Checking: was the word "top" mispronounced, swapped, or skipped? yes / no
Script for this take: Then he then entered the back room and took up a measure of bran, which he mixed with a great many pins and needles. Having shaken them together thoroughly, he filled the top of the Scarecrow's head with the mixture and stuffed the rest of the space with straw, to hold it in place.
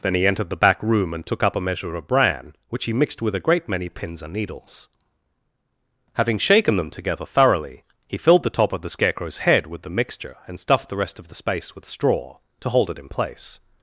no